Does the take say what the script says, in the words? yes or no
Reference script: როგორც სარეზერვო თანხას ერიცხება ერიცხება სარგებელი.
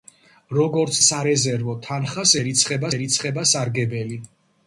yes